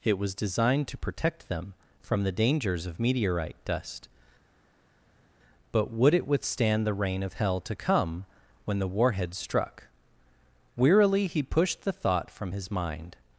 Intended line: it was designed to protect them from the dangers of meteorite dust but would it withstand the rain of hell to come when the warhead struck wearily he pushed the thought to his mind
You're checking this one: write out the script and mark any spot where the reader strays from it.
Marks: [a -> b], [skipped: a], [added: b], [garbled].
it was designed to protect them from the dangers of meteorite dust but would it withstand the rain of hell to come when the warhead struck wearily he pushed the thought [to -> from] his mind